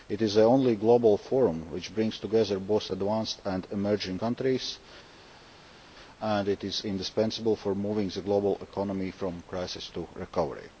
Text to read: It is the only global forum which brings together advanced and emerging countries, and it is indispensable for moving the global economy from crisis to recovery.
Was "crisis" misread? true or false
false